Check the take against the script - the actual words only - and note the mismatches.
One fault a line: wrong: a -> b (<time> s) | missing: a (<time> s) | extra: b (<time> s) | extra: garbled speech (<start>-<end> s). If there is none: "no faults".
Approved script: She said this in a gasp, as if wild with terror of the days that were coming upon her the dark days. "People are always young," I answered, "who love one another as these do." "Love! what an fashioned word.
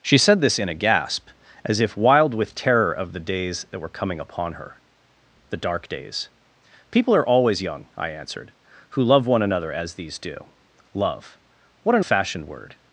no faults